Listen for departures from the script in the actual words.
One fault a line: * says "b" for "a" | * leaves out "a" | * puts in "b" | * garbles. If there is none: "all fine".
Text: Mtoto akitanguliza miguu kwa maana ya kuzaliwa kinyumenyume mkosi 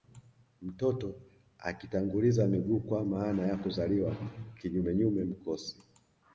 all fine